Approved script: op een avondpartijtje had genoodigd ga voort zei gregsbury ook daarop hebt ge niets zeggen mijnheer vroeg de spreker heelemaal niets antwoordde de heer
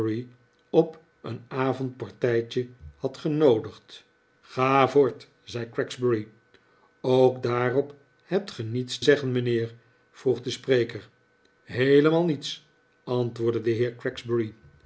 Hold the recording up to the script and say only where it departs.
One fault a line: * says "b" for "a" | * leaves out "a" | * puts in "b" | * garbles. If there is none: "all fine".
all fine